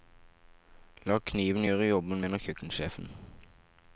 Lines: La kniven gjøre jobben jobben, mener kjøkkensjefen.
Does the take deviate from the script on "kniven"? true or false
false